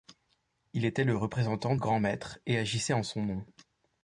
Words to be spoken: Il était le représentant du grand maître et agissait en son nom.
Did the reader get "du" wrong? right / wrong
wrong